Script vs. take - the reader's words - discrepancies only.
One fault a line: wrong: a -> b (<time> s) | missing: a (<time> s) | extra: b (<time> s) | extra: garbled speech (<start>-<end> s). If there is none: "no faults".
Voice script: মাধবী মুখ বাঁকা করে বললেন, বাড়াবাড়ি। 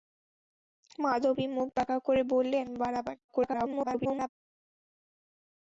extra: garbled speech (3.3-4.3 s)